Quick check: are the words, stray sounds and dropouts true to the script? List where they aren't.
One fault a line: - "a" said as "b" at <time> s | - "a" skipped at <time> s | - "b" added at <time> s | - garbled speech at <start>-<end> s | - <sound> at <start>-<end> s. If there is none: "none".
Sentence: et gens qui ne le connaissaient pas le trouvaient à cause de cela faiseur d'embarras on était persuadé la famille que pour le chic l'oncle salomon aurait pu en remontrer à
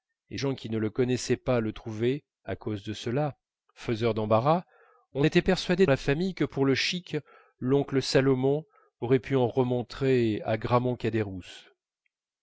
none